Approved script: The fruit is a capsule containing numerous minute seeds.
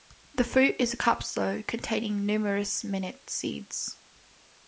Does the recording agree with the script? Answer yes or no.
yes